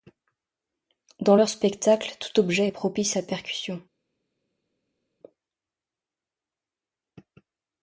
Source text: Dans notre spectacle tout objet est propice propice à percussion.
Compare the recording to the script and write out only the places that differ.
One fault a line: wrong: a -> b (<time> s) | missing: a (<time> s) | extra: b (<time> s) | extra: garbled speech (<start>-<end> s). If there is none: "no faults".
wrong: notre -> leur (1.3 s)
missing: propice (3.2 s)